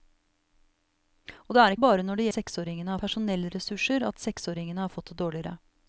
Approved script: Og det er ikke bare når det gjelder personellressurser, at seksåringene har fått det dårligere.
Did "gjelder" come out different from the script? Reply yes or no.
yes